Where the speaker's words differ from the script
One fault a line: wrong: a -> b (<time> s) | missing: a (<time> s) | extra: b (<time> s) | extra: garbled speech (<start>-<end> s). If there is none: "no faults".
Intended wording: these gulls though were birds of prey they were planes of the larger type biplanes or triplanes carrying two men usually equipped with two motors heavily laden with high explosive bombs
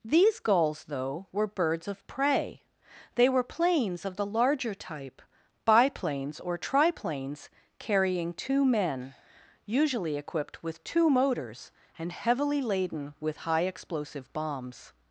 extra: and (12.0 s)